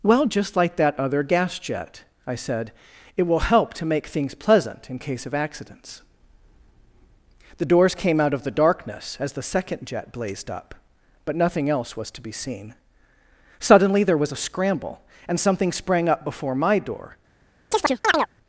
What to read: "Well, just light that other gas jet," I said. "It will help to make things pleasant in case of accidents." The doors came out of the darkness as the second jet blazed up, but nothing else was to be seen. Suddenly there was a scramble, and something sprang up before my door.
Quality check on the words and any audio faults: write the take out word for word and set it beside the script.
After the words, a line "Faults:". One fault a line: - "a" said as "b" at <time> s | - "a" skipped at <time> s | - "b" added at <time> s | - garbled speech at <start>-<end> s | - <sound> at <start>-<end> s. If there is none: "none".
"Well, just like that other gas jet," I said. "It will help to make things pleasant in case of accidents." The doors came out of the darkness as the second jet blazed up, but nothing else was to be seen. Suddenly there was a scramble, and something sprang up before my door.
Faults:
- "light" said as "like" at 0.6 s
- chirp at 17.7-18.3 s